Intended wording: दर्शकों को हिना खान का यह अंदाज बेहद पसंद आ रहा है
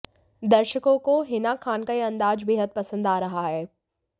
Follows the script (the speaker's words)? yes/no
yes